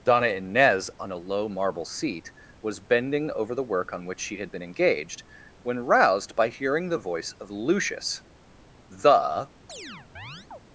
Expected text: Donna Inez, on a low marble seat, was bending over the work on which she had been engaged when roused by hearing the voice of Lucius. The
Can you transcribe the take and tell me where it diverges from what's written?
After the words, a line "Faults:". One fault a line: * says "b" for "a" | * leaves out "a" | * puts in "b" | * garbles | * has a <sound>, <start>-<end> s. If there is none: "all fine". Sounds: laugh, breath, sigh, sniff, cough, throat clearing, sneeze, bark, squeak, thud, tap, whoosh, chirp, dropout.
Donna Inez, on a low marble seat, was bending over the work on which she had been engaged when roused by hearing the voice of Lucius. The
Faults:
* has a chirp, 9.7-10.6 s